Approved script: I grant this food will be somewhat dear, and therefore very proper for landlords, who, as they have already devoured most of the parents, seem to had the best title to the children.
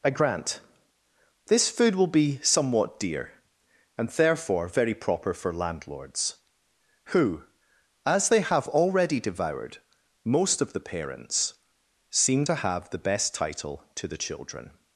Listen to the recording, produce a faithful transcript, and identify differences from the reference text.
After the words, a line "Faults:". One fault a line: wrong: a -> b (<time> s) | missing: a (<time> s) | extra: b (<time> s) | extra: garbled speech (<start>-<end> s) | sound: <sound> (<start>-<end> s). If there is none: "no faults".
I grant this food will be somewhat dear, and therefore very proper for landlords, who, as they have already devoured most of the parents, seem to have the best title to the children.
Faults:
wrong: had -> have (12.6 s)